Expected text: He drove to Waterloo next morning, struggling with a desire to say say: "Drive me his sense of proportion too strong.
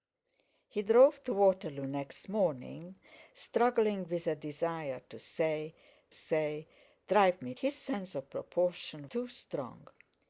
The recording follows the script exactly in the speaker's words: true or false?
true